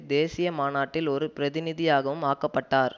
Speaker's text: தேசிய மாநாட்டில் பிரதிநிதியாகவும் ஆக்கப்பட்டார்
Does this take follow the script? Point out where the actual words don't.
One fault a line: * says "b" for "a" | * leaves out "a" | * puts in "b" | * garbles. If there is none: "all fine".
* puts in "ஒரு"